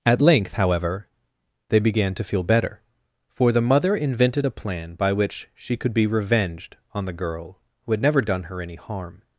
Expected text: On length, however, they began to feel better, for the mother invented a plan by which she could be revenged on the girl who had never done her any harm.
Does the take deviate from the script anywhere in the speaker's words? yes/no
yes